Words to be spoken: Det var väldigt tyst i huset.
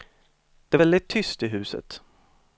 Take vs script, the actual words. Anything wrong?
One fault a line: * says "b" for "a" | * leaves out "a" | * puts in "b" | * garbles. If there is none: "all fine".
* leaves out "var"